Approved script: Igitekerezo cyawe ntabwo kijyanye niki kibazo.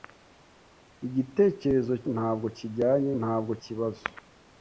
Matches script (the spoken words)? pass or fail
fail